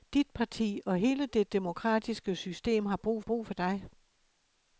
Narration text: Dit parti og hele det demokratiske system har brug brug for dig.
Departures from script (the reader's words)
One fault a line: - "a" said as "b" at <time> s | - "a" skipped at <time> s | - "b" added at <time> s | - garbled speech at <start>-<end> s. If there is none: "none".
none